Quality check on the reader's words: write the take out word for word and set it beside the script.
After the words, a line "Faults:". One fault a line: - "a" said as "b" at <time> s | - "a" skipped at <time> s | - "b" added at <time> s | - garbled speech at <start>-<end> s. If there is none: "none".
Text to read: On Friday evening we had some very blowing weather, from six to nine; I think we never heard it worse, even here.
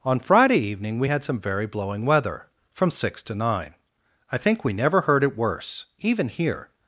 On Friday evening we had some very blowing weather, from six to nine; I think we never heard it worse, even here.
Faults:
none